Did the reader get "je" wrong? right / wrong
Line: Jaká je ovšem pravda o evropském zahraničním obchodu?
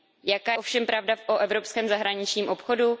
wrong